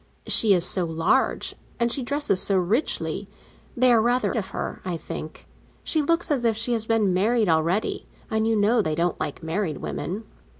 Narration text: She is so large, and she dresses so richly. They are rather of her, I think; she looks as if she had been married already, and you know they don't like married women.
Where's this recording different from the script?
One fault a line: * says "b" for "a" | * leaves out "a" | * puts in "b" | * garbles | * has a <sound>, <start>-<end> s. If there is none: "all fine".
all fine